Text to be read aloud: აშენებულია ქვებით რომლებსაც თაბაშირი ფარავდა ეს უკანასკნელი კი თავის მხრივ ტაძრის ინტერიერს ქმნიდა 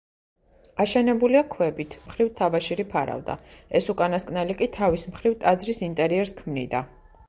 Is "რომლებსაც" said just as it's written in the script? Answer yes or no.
no